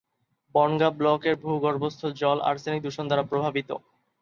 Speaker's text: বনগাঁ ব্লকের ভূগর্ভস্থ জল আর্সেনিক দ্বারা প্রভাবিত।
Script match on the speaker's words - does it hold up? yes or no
no